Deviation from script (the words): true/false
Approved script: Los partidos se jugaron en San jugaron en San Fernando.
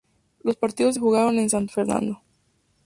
true